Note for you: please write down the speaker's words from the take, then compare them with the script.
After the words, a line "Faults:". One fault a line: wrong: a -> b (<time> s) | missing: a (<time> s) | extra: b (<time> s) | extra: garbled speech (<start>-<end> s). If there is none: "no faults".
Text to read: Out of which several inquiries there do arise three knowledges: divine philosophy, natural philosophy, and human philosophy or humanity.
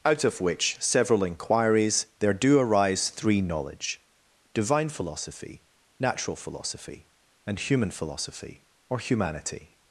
Out of which several inquiries there do arise three knowledge: divine philosophy, natural philosophy, and human philosophy or humanity.
Faults:
wrong: knowledges -> knowledge (3.4 s)